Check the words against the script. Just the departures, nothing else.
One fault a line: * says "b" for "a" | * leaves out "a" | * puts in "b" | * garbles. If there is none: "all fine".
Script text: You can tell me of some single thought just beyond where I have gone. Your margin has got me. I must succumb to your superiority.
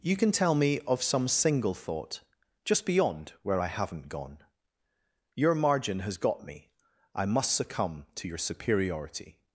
* says "haven't" for "have"